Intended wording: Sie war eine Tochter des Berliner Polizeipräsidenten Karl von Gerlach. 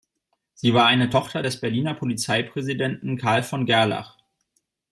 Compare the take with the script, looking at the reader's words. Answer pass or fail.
pass